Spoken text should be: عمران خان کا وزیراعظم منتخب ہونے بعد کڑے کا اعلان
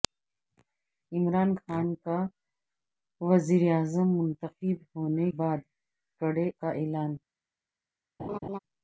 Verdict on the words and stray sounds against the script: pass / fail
fail